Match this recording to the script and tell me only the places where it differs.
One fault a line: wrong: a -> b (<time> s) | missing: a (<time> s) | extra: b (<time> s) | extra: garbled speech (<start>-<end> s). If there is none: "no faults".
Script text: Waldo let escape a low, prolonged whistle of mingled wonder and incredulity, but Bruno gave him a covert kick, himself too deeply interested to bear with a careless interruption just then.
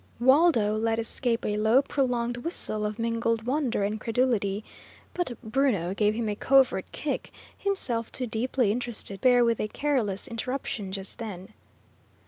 missing: to (9.2 s)